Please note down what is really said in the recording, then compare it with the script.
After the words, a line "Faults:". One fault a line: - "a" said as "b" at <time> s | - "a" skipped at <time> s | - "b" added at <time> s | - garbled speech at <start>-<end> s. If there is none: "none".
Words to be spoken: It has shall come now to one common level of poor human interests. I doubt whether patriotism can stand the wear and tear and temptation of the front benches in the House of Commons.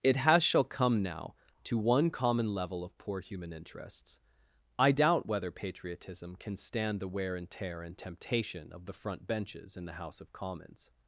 It has shall come now to one common level of poor human interests. I doubt whether patriotism can stand the wear and tear and temptation of the front benches in the House of Commons.
Faults:
none